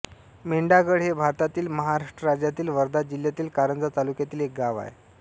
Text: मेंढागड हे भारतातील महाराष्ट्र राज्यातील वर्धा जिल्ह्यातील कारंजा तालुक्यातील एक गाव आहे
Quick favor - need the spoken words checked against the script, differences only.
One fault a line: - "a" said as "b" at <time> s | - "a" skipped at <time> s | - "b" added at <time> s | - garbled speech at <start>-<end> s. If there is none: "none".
none